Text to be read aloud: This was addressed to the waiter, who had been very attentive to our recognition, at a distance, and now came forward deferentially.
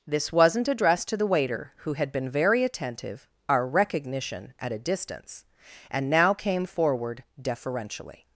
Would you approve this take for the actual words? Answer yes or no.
no